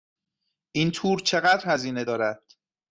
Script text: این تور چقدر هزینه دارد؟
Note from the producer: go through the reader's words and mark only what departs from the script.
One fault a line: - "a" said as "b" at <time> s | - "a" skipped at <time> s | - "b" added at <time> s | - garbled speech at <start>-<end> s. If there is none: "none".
none